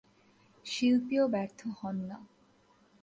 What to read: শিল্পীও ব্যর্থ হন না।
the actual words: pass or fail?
pass